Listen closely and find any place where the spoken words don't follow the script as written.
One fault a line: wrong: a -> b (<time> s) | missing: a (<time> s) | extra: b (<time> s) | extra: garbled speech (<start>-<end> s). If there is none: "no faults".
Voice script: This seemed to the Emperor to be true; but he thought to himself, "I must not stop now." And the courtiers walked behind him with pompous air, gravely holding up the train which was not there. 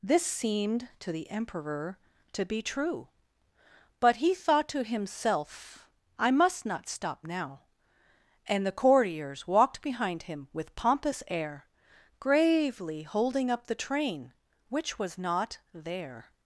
no faults